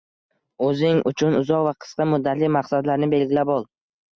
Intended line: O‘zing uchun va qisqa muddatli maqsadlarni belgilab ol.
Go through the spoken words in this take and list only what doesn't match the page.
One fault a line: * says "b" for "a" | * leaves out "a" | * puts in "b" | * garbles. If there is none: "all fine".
* puts in "uzoq"